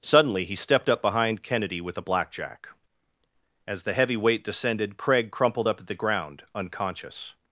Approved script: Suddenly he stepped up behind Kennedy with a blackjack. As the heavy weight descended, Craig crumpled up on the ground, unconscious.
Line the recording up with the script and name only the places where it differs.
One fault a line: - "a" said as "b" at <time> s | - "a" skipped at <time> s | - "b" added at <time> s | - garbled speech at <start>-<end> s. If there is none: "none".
- "on" said as "at" at 5.8 s